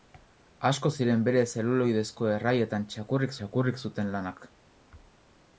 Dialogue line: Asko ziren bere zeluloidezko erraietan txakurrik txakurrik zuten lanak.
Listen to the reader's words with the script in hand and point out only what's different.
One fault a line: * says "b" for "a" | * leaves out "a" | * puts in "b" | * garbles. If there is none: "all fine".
all fine